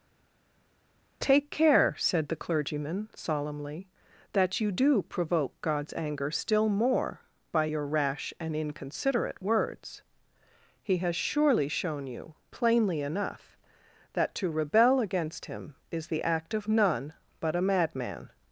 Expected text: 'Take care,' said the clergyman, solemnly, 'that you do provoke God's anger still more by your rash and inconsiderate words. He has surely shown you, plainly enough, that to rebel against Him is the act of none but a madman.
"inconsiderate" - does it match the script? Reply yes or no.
yes